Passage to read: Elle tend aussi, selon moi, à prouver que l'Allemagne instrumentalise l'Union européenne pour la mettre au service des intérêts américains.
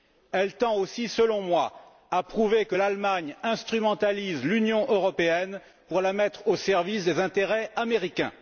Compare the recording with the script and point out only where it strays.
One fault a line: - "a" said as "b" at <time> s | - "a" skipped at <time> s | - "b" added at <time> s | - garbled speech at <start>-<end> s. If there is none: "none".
none